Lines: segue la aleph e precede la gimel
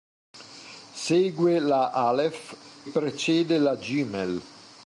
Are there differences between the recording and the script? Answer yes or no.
yes